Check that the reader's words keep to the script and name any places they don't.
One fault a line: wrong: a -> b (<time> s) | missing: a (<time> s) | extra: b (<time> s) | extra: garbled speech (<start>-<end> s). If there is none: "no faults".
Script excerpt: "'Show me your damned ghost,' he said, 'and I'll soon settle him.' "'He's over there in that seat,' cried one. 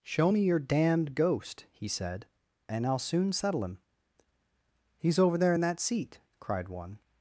no faults